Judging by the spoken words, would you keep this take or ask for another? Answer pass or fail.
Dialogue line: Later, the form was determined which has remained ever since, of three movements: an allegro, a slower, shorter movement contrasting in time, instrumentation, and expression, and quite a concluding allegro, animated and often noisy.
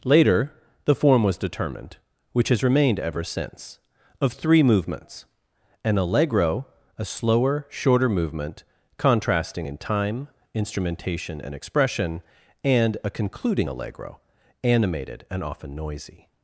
fail